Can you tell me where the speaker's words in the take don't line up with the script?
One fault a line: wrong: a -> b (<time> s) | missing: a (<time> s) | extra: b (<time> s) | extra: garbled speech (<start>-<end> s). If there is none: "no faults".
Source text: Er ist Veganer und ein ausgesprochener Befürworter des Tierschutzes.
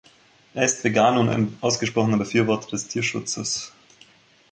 no faults